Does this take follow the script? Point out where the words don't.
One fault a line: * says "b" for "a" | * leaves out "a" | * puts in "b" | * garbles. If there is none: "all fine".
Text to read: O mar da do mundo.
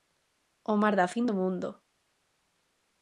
* puts in "fin"